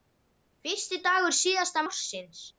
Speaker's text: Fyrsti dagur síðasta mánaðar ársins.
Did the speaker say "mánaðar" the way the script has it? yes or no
no